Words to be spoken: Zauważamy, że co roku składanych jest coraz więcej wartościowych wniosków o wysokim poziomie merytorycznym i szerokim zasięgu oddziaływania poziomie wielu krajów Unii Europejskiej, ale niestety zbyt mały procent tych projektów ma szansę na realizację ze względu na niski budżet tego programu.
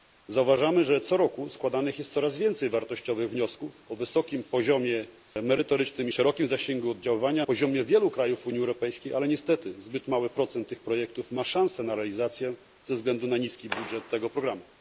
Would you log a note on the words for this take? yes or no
no